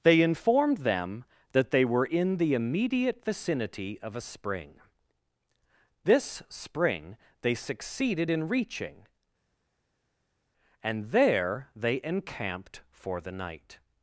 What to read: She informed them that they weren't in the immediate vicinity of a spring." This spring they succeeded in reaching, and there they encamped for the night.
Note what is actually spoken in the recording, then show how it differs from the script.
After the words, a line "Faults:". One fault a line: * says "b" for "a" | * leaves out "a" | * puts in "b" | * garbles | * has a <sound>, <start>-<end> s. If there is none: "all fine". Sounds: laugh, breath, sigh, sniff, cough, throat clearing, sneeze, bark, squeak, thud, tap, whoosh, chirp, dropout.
They informed them that they were in the immediate vicinity of a spring." This spring they succeeded in reaching, and there they encamped for the night.
Faults:
* says "They" for "She"
* says "were" for "weren't"